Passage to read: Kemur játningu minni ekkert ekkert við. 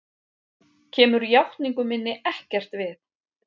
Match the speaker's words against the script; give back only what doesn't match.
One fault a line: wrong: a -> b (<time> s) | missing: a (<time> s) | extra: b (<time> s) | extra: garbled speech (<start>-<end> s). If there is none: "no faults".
missing: ekkert (2.8 s)